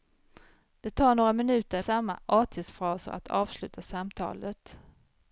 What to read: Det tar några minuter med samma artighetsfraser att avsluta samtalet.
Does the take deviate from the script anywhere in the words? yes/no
yes